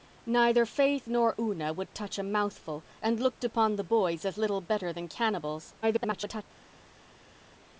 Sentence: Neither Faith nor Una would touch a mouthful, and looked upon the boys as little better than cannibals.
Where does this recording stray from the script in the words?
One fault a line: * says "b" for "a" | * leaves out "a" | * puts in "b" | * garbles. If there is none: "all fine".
* garbles